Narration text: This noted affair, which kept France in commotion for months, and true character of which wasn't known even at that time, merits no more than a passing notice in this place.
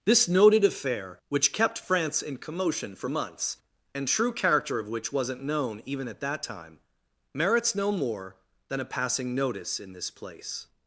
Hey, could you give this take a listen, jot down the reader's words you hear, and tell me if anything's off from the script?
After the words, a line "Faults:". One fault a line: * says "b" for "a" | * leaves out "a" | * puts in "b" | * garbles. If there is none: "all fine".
This noted affair, which kept France in commotion for months, and true character of which wasn't known even at that time, merits no more than a passing notice in this place.
Faults:
all fine